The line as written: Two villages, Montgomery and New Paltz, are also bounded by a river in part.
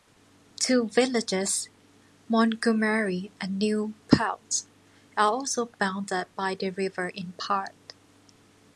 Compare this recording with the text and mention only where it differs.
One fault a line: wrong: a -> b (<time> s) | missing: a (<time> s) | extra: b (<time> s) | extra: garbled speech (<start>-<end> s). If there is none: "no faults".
wrong: a -> the (6.5 s)